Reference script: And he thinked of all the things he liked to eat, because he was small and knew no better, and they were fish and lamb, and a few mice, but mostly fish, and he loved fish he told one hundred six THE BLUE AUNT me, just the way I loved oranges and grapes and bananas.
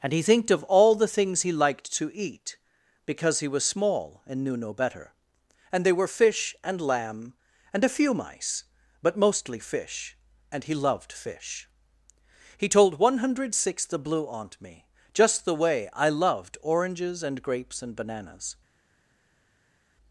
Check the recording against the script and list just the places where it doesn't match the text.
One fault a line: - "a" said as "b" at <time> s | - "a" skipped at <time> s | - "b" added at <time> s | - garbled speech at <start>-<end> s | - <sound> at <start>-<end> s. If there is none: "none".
none